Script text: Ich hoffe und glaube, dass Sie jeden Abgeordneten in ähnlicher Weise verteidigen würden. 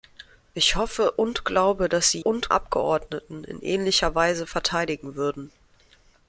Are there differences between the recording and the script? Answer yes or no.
yes